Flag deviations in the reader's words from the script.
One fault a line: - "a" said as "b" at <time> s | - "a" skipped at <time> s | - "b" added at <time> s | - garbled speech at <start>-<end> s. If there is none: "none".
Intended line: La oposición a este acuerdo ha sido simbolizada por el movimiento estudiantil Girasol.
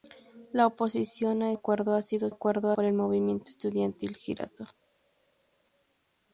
- "este" skipped at 1.5 s
- "simbolizada" said as "acuerdo" at 2.3 s